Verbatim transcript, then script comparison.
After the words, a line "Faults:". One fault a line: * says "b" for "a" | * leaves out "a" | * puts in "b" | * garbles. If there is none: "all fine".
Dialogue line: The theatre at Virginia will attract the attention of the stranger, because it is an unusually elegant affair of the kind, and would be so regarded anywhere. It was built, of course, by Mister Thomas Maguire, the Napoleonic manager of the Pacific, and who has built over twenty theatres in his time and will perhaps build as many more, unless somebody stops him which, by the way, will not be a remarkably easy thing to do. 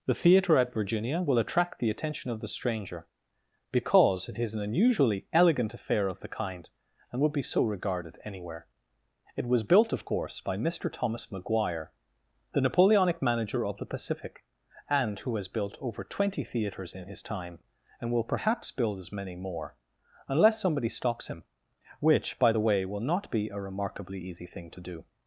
The theatre at Virginia will attract the attention of the stranger, because it is an unusually elegant affair of the kind, and would be so regarded anywhere. It was built, of course, by Mister Thomas Maguire, the Napoleonic manager of the Pacific, and who has built over twenty theatres in his time and will perhaps build as many more, unless somebody stops him which, by the way, will not be a remarkably easy thing to do.
Faults:
all fine